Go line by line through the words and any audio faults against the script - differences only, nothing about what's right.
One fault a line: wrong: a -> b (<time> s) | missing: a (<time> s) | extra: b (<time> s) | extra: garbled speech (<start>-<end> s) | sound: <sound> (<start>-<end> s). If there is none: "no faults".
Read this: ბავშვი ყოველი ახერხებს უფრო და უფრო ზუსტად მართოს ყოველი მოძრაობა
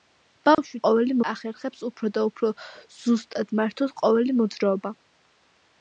sound: dropout (0.5-0.6 s)